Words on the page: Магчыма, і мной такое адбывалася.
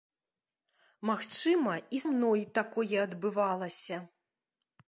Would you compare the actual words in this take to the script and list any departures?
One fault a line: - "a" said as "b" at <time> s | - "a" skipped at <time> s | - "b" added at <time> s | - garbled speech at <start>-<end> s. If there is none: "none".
none